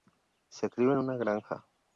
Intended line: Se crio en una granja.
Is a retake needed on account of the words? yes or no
no